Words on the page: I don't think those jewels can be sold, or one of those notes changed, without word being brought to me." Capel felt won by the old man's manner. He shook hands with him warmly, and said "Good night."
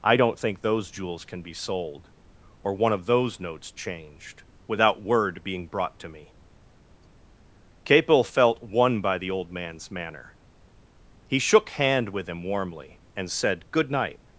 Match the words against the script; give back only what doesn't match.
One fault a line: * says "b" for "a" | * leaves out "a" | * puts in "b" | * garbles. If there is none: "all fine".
* says "hand" for "hands"